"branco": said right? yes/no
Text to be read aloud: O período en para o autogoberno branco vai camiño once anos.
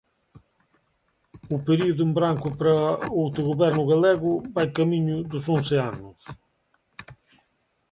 no